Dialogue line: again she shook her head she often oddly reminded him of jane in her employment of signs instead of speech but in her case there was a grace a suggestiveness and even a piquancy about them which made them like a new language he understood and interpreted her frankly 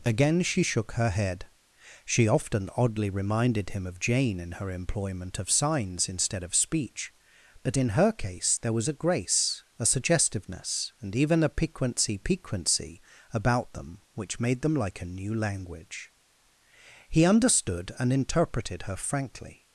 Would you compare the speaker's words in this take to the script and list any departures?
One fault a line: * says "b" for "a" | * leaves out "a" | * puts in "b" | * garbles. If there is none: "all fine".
* puts in "piquancy"